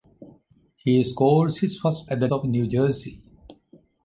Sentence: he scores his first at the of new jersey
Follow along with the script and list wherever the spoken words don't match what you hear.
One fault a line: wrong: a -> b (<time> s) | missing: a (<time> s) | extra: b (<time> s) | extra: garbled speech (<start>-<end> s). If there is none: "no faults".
no faults